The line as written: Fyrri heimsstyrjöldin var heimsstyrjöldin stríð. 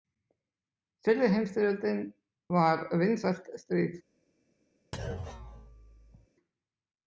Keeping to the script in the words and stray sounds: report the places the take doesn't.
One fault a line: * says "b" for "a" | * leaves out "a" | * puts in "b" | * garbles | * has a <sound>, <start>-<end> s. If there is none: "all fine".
* says "vinsælt" for "heimsstyrjöldin"
* has a thud, 4.9-6.3 s